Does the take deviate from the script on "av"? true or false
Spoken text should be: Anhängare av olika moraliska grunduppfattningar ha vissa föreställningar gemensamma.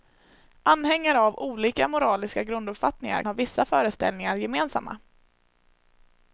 false